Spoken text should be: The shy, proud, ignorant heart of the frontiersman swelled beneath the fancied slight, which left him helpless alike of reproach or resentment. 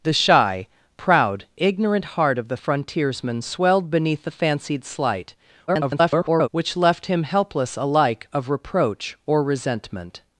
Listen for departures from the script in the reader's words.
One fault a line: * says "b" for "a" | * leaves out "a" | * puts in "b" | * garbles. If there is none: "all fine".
* garbles